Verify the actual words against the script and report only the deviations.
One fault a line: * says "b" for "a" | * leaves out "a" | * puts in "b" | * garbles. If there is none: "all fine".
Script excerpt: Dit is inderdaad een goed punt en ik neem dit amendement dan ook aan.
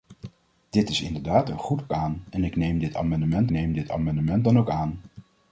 * says "aan" for "punt"
* puts in "neem dit amendement"